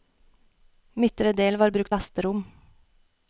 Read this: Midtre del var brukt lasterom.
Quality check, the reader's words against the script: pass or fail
pass